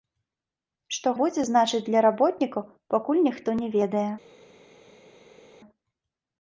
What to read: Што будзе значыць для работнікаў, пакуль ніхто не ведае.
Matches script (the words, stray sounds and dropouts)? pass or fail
pass